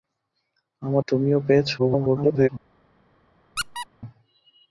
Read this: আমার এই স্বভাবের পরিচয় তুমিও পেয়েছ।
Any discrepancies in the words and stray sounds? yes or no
yes